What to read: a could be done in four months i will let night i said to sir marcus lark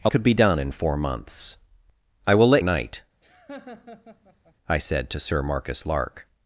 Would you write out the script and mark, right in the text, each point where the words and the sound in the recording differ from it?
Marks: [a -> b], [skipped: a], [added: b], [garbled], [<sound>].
a could be done in four months i will let night [laugh] i said to sir marcus lark